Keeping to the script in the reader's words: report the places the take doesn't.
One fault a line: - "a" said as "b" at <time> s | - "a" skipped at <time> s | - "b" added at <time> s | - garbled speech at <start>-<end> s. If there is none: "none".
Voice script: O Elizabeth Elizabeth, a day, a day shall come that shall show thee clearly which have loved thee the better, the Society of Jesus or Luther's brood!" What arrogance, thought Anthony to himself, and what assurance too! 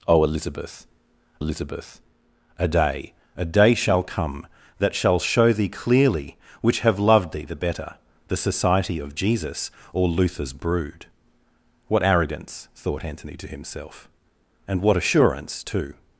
none